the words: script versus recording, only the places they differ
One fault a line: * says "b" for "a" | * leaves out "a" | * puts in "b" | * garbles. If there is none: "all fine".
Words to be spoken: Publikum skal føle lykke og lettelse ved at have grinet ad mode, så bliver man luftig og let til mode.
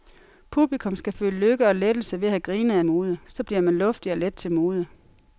all fine